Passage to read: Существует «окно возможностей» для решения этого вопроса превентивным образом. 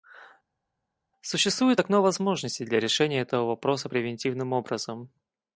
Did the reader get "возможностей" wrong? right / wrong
right